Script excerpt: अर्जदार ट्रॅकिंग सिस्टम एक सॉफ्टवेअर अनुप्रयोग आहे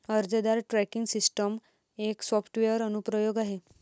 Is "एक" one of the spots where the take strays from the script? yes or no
no